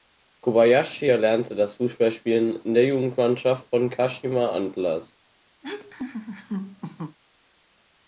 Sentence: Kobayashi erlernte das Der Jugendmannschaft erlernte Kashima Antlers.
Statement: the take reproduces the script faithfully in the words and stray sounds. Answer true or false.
false